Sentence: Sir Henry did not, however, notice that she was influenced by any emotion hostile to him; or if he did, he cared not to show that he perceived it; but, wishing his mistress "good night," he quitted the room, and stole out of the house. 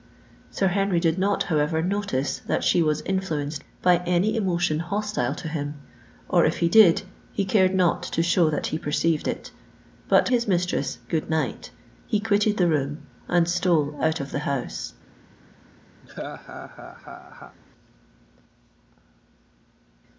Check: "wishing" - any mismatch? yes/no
yes